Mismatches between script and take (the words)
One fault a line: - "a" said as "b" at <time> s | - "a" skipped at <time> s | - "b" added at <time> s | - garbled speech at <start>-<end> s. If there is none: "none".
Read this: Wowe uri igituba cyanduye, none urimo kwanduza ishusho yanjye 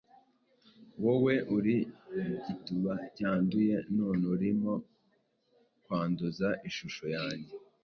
none